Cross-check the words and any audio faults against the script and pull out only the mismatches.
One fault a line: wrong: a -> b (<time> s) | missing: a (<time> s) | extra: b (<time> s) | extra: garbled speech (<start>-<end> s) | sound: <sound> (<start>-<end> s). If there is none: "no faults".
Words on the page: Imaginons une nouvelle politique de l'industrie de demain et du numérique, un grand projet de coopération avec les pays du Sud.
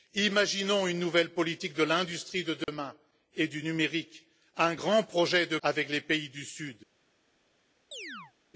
sound: dropout (2.6-2.7 s)
missing: coopération (5.6 s)
sound: chirp (7.9-8.3 s)